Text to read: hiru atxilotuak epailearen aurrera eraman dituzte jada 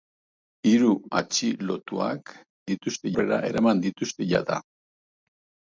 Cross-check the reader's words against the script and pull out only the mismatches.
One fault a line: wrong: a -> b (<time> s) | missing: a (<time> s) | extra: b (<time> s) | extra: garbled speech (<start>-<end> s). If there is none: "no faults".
wrong: epailearen -> dituzte (2.7 s)